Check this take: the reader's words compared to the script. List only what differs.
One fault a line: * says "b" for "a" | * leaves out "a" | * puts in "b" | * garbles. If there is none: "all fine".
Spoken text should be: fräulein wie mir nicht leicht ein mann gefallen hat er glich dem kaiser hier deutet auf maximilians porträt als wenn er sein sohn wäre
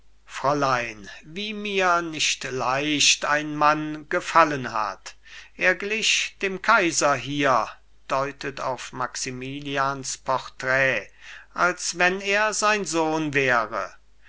all fine